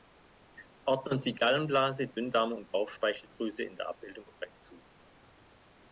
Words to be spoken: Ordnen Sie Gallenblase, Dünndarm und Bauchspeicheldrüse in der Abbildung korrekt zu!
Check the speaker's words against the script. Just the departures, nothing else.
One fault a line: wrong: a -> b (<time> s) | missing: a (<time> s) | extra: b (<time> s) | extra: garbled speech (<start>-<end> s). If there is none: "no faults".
no faults